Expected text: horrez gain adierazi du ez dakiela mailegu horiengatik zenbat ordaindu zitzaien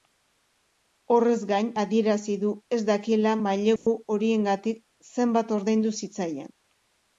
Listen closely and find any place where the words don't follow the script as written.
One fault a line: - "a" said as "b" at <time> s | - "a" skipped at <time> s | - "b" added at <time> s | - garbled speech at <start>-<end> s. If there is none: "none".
none